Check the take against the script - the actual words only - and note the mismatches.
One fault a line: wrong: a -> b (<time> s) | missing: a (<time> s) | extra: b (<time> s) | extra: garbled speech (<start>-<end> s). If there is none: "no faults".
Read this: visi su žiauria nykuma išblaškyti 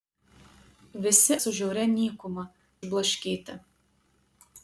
no faults